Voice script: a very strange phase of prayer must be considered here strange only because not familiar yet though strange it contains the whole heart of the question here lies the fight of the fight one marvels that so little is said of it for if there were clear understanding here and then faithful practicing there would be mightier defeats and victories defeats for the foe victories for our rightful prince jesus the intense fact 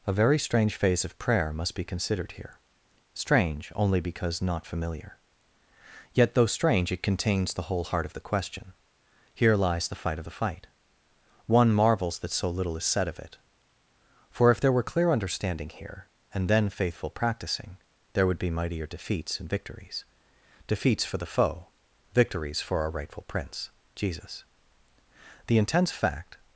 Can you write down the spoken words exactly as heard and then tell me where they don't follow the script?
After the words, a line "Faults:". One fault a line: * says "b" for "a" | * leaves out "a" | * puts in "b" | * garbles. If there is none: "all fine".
a very strange phase of prayer must be considered here strange only because not familiar yet though strange it contains the whole heart of the question here lies the fight of the fight one marvels that so little is said of it for if there were clear understanding here and then faithful practicing there would be mightier defeats and victories defeats for the foe victories for our rightful prince jesus the intense fact
Faults:
all fine